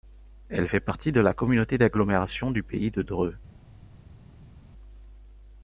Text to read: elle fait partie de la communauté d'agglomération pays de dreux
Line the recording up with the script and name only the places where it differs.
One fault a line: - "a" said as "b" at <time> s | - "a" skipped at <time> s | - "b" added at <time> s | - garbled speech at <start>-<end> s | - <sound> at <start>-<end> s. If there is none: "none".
- "du" added at 2.5 s